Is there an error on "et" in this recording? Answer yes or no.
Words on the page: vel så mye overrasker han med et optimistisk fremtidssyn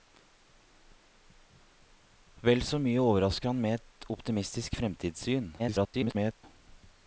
no